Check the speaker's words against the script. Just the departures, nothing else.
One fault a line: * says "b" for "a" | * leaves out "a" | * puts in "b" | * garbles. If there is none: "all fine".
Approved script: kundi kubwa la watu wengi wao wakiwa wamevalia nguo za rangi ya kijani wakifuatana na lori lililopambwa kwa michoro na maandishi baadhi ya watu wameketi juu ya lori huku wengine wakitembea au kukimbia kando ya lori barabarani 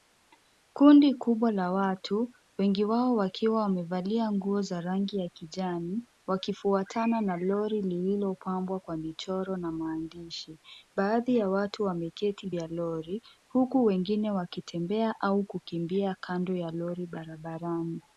* leaves out "juu"